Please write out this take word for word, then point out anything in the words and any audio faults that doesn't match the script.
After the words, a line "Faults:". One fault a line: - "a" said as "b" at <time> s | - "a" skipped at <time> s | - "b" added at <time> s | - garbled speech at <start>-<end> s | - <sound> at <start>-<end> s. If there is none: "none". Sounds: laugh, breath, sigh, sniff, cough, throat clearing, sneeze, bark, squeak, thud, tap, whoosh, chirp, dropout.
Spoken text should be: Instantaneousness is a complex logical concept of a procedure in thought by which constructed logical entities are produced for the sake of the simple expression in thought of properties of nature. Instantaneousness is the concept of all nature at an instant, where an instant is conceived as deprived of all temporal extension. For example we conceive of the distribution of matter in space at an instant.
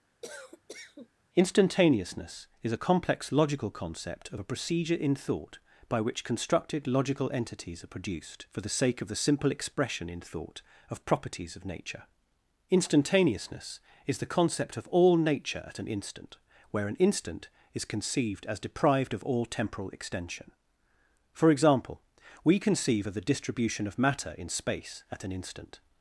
Instantaneousness is a complex logical concept of a procedure in thought by which constructed logical entities are produced for the sake of the simple expression in thought of properties of nature. Instantaneousness is the concept of all nature at an instant, where an instant is conceived as deprived of all temporal extension. For example we conceive of the distribution of matter in space at an instant.
Faults:
- cough at 0.2-1.1 s